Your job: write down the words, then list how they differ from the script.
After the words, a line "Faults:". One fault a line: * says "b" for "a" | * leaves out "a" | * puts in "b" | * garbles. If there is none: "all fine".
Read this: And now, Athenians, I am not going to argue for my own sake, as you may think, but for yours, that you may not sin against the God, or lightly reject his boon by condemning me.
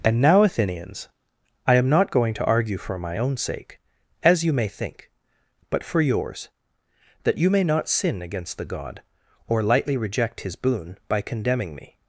And now, Athenians, I am not going to argue for my own sake, as you may think, but for yours, that you may not sin against the God, or lightly reject his boon by condemning me.
Faults:
all fine